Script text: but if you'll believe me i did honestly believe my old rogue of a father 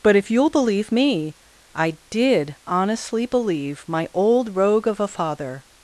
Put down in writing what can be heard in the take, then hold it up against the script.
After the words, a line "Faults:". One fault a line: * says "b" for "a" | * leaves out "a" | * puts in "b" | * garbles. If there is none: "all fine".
but if you'll believe me i did honestly believe my old rogue of a father
Faults:
all fine